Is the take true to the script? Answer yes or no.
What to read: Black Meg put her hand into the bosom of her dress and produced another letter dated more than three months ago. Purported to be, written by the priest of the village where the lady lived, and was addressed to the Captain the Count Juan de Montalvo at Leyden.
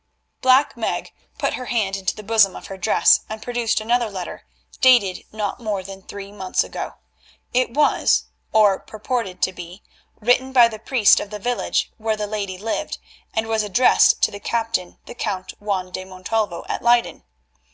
no